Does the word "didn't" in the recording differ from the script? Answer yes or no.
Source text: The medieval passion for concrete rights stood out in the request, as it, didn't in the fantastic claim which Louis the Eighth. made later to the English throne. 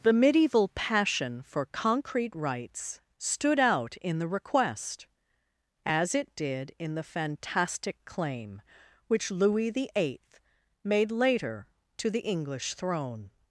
yes